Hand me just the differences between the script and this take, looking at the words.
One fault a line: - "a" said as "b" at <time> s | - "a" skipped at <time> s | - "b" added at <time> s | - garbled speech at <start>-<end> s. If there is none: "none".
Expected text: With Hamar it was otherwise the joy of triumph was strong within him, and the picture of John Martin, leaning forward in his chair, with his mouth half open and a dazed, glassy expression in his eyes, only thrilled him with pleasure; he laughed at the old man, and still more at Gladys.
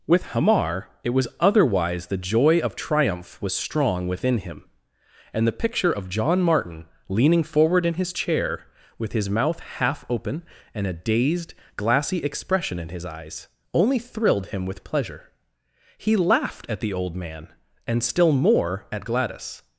none